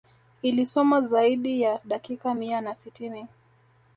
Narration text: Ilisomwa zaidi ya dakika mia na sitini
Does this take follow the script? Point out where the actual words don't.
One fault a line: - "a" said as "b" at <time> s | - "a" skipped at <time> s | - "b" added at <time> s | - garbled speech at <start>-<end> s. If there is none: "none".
none